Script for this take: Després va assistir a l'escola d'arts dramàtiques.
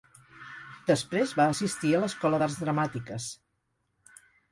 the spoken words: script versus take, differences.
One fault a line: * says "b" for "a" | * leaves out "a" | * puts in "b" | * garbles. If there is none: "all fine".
all fine